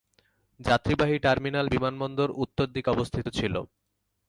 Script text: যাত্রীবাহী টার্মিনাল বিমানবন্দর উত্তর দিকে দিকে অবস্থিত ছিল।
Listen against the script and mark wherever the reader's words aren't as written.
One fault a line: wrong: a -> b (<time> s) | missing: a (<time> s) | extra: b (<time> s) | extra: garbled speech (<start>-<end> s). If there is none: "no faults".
missing: দিকে (2.9 s)